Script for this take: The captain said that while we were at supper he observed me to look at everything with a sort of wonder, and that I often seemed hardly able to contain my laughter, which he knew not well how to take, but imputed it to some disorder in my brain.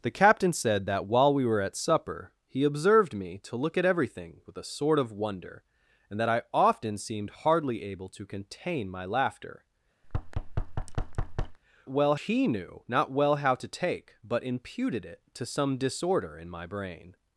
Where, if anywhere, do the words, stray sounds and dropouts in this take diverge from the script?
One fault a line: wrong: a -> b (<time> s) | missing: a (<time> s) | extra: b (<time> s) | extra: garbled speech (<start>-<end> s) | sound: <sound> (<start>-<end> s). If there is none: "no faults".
sound: thud (10.0-11.6 s)
wrong: which -> well (11.9 s)